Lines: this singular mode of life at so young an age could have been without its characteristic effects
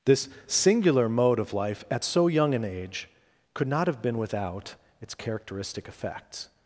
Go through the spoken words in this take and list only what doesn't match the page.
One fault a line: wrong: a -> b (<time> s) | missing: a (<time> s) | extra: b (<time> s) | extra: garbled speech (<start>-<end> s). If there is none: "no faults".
extra: not (3.7 s)